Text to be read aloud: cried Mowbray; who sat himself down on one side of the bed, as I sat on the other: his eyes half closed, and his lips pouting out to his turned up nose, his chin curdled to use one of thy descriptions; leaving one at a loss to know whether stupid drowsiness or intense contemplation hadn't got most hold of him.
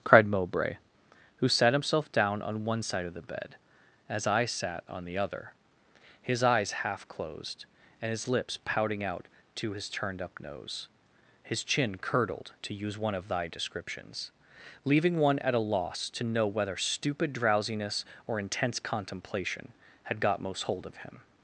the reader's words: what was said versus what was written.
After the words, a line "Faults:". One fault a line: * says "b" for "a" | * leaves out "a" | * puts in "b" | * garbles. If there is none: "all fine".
cried Mowbray; who sat himself down on one side of the bed, as I sat on the other: his eyes half closed, and his lips pouting out to his turned up nose, his chin curdled to use one of thy descriptions; leaving one at a loss to know whether stupid drowsiness or intense contemplation had got most hold of him.
Faults:
* says "had" for "hadn't"